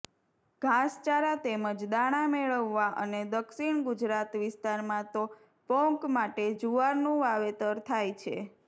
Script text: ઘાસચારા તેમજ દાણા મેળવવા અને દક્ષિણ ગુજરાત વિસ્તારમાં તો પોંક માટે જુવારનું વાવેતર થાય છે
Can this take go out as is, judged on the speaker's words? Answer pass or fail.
pass